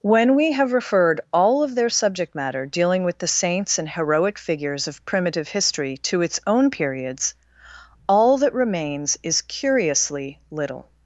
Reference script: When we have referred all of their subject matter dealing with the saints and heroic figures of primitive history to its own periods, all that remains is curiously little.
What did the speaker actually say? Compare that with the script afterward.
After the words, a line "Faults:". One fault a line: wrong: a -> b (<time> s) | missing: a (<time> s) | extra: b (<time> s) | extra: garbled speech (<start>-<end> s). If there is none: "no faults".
When we have referred all of their subject matter dealing with the saints and heroic figures of primitive history to its own periods, all that remains is curiously little.
Faults:
no faults